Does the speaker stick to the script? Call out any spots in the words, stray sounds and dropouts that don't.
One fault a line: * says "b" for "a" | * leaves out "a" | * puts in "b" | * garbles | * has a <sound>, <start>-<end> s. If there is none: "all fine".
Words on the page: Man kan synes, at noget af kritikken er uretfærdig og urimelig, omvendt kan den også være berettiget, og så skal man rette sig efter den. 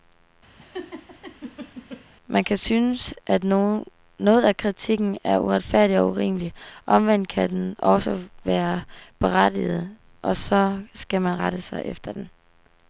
* has a laugh, 0.6-2.1 s